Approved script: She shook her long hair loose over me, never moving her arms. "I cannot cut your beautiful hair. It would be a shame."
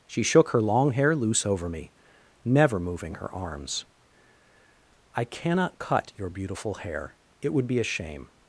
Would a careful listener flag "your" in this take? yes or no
no